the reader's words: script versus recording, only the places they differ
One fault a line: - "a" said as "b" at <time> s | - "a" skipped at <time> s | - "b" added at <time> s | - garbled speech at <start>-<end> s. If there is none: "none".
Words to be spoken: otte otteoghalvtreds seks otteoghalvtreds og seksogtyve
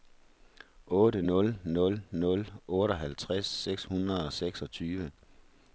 - "nul nul nul" added at 1.3 s
- "otteoghalvtreds" said as "hundrede" at 3.8 s